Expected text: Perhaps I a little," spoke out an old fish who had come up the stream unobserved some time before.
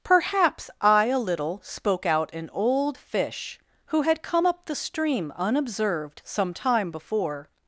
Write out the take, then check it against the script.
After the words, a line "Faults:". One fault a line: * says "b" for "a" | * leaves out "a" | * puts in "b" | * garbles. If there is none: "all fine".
Perhaps I a little," spoke out an old fish who had come up the stream unobserved some time before.
Faults:
all fine